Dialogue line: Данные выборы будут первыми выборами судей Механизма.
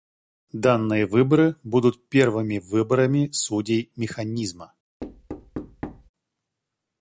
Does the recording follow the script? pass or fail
pass